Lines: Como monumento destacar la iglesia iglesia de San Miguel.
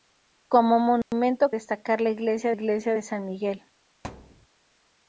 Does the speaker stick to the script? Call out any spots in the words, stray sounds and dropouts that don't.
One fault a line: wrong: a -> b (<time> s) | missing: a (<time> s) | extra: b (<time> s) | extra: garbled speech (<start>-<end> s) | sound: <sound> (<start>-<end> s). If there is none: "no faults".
sound: dropout (1.0-1.1 s)
sound: thud (4.0-4.5 s)